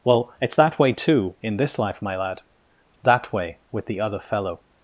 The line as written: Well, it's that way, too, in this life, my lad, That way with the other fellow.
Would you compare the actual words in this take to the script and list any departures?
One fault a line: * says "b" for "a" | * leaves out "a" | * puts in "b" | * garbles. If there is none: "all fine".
all fine